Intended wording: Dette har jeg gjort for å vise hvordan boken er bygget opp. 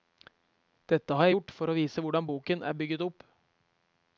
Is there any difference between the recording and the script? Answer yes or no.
no